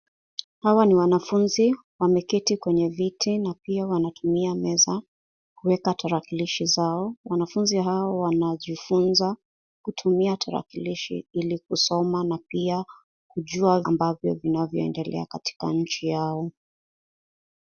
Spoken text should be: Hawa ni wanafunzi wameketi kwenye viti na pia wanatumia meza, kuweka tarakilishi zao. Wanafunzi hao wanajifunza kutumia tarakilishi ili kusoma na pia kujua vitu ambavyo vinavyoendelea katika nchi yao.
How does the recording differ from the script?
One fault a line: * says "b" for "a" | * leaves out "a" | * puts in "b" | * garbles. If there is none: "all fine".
* leaves out "vitu"